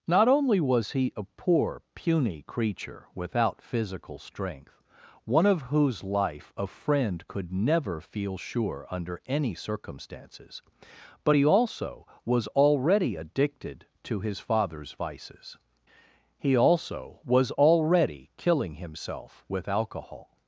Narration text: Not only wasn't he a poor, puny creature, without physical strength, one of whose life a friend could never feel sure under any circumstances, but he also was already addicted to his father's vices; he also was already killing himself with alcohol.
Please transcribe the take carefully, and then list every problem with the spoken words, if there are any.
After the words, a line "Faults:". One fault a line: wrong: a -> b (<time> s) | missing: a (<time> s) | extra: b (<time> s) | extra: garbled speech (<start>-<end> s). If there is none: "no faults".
Not only was he a poor, puny creature, without physical strength, one of whose life a friend could never feel sure under any circumstances, but he also was already addicted to his father's vices; he also was already killing himself with alcohol.
Faults:
wrong: wasn't -> was (0.6 s)